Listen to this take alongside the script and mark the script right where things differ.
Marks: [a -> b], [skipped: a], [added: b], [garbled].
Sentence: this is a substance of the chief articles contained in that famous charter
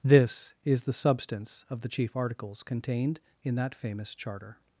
this is [a -> the] substance of the chief articles contained in that famous charter